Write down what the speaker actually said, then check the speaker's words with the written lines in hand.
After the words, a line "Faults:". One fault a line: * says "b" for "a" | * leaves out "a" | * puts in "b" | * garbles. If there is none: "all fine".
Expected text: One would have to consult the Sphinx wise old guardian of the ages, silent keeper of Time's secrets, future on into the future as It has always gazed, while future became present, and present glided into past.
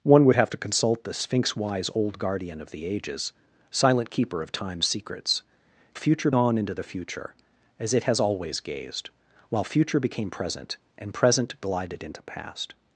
One would have to consult the Sphinx wise old guardian of the ages, silent keeper of Time's secrets, future on into the future as It has always gazed, while future became present, and present glided into past.
Faults:
all fine